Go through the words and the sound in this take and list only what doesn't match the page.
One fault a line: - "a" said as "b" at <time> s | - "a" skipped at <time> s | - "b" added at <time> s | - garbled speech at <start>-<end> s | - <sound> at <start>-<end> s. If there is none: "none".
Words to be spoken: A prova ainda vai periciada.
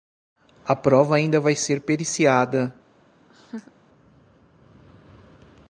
- "ser" added at 1.6 s
- laugh at 3.3-3.7 s